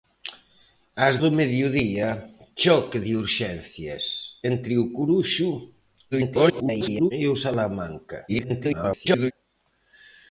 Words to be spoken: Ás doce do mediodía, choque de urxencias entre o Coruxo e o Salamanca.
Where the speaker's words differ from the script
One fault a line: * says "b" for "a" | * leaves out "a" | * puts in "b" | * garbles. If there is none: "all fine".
* leaves out "doce"
* garbles
* garbles